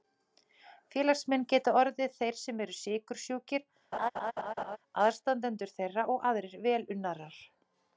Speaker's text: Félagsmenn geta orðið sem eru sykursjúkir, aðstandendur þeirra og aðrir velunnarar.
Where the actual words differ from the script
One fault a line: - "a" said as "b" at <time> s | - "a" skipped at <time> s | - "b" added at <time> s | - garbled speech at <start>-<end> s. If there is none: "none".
- "þeir" added at 2.2 s